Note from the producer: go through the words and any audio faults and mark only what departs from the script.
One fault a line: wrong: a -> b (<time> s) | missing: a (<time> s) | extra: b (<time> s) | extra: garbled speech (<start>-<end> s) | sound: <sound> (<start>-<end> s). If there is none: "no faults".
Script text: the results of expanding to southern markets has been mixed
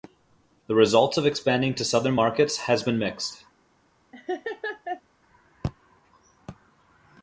sound: laugh (4.1-5.0 s)